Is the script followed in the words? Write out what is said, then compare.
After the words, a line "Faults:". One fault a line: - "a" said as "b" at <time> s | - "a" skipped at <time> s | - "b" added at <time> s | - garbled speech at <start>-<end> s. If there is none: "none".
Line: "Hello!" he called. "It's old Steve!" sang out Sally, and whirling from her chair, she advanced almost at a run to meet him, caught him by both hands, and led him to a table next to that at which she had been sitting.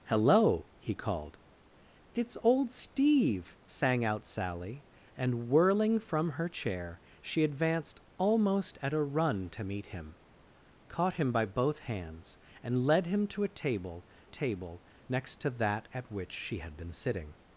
"Hello!" he called. "It's old Steve!" sang out Sally, and whirling from her chair, she advanced almost at a run to meet him, caught him by both hands, and led him to a table table next to that at which she had been sitting.
Faults:
- "table" added at 14.2 s